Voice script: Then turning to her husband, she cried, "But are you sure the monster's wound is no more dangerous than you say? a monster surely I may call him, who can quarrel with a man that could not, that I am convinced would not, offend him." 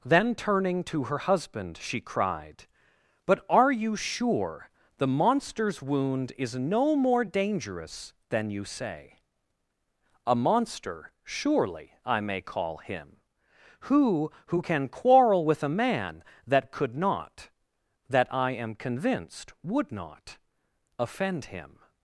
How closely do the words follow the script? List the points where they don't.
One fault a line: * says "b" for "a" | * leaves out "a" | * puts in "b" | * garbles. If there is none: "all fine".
* puts in "who"